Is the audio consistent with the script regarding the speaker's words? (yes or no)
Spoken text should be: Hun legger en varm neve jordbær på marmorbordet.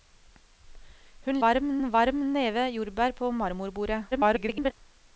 no